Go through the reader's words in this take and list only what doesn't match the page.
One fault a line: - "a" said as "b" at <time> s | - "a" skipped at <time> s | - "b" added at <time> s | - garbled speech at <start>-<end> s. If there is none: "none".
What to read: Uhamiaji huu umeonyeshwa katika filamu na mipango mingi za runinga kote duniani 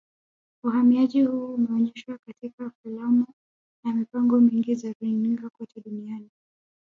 none